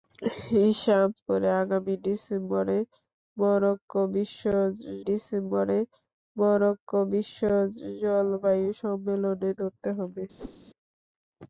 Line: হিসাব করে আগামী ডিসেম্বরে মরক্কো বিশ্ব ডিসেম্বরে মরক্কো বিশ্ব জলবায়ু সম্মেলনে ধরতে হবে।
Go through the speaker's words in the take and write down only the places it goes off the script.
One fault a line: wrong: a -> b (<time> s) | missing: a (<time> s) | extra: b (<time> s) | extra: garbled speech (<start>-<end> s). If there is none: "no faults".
no faults